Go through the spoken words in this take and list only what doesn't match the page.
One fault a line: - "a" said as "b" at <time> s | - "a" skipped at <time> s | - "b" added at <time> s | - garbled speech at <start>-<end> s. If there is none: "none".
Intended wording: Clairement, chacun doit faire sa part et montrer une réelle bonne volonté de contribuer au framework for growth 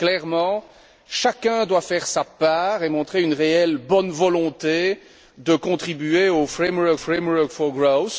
- "framework" added at 7.0 s